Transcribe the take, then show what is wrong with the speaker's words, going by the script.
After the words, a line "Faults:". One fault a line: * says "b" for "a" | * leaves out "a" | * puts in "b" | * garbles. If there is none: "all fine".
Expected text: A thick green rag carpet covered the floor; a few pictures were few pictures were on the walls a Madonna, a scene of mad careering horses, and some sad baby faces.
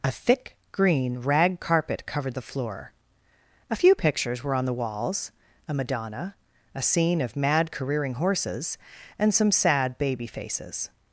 A thick green rag carpet covered the floor; a few pictures were on the walls a Madonna, a scene of mad careering horses, and some sad baby faces.
Faults:
* leaves out "few pictures were"